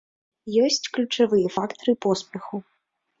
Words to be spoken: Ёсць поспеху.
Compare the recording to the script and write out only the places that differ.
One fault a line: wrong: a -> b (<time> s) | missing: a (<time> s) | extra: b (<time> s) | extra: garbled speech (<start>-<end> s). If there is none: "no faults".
extra: ключавыя фактары (0.9 s)